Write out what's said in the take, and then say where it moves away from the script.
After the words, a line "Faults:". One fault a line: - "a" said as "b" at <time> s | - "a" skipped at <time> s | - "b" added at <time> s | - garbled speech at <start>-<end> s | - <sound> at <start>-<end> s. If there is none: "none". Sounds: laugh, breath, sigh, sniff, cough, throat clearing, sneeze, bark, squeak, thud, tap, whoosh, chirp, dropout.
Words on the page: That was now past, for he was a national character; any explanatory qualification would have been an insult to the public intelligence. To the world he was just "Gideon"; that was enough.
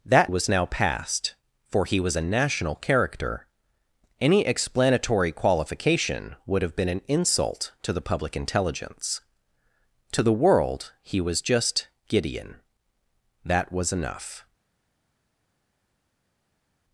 That was now past, for he was a national character; any explanatory qualification would have been an insult to the public intelligence. To the world he was just "Gideon"; that was enough.
Faults:
none